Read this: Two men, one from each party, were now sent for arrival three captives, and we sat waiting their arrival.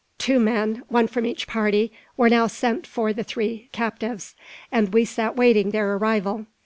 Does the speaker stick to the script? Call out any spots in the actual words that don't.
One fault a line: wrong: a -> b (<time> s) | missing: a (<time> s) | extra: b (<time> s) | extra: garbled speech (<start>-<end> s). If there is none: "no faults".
wrong: arrival -> the (3.1 s)